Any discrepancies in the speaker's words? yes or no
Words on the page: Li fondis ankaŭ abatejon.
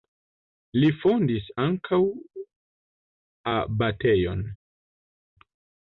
no